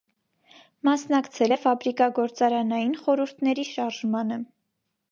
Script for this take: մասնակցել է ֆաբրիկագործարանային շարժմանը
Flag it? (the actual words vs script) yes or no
yes